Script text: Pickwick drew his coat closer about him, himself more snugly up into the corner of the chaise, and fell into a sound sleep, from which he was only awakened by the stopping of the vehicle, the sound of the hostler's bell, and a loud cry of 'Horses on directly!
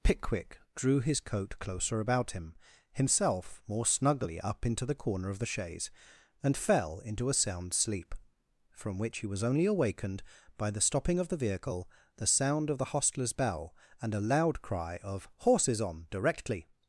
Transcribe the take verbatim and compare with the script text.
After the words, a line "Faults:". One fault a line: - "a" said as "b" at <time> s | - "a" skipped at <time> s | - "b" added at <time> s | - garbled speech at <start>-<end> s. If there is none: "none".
Pickwick drew his coat closer about him, himself more snugly up into the corner of the chaise, and fell into a sound sleep, from which he was only awakened by the stopping of the vehicle, the sound of the hostler's bell, and a loud cry of 'Horses on directly!
Faults:
none